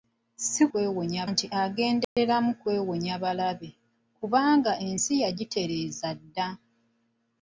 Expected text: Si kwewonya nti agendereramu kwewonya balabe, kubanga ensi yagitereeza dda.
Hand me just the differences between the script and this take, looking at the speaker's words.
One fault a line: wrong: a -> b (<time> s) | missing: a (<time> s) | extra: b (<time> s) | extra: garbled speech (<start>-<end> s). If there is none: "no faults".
no faults